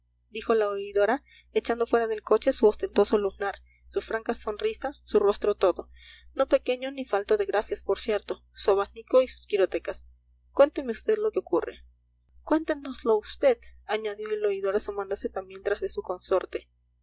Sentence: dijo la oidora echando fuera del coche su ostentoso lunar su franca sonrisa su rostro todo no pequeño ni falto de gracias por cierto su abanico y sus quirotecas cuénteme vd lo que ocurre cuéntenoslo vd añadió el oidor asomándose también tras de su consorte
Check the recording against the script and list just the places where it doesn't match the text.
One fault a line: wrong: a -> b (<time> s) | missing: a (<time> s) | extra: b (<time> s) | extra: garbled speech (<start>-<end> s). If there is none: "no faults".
no faults